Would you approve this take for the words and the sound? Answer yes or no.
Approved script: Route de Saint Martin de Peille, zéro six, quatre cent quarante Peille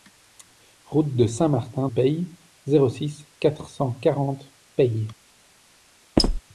no